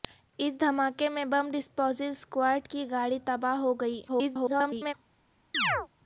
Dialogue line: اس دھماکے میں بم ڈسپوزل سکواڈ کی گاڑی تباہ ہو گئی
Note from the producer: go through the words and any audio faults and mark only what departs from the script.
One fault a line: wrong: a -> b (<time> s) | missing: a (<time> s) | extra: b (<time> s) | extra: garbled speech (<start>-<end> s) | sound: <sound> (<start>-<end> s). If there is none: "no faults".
extra: garbled speech (4.1-4.9 s)
sound: chirp (5.5-5.9 s)